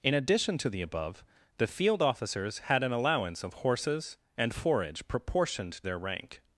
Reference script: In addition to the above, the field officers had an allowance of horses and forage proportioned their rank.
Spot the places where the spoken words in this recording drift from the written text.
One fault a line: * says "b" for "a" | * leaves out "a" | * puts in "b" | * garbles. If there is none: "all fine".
all fine